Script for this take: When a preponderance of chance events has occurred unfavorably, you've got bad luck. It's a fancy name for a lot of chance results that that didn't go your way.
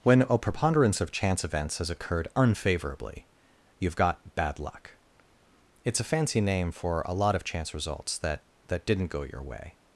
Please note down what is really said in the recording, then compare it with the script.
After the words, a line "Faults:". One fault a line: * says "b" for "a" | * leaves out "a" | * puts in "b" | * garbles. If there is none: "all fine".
When a preponderance of chance events has occurred unfavorably, you've got bad luck. It's a fancy name for a lot of chance results that that didn't go your way.
Faults:
all fine